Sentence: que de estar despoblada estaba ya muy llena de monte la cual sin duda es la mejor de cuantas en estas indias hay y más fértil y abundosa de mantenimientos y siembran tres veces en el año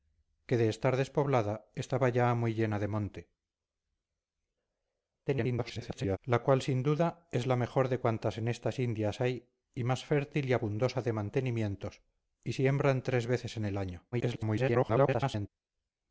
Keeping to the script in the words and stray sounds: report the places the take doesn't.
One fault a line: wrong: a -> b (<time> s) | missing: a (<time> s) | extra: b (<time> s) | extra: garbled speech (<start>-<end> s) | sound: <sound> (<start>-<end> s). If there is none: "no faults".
extra: garbled speech (5.3-6.2 s)
extra: garbled speech (14.1-15.5 s)